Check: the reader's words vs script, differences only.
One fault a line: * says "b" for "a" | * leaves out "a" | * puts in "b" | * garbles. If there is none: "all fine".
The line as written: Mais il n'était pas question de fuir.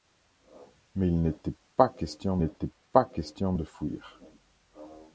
* puts in "n'était pas question"